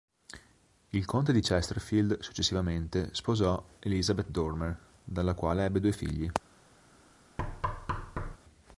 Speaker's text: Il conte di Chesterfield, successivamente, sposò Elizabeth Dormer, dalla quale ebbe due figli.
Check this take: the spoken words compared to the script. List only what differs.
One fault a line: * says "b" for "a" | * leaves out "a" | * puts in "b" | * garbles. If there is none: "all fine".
all fine